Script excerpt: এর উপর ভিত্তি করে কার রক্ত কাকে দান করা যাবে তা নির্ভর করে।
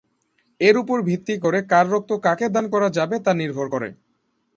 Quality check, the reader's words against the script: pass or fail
pass